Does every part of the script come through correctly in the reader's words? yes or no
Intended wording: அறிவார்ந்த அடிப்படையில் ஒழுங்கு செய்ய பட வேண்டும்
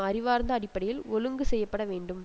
yes